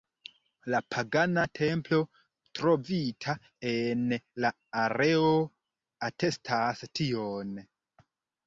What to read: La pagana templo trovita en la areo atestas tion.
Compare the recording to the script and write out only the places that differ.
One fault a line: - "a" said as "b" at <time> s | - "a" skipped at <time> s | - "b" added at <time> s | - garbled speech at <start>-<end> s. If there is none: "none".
none